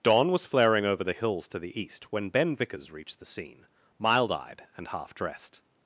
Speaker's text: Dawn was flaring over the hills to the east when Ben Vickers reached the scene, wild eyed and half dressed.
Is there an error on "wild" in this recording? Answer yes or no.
yes